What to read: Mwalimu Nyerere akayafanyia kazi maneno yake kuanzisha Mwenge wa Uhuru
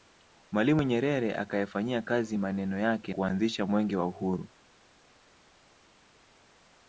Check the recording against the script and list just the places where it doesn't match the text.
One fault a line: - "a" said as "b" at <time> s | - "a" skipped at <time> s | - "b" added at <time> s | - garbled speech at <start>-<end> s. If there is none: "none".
none